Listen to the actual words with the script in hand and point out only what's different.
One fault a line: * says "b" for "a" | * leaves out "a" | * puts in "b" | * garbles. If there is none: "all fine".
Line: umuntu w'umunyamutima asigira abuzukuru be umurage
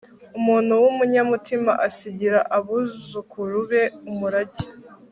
all fine